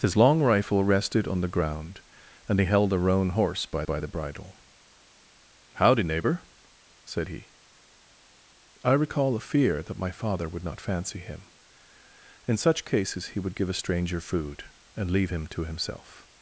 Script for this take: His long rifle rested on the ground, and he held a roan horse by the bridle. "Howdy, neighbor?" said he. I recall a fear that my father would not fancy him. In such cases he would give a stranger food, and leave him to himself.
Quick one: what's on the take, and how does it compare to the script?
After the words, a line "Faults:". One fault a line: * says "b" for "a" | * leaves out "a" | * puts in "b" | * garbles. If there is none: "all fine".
His long rifle rested on the ground, and he held a roan horse by by the bridle. "Howdy, neighbor?" said he. I recall a fear that my father would not fancy him. In such cases he would give a stranger food, and leave him to himself.
Faults:
* puts in "by"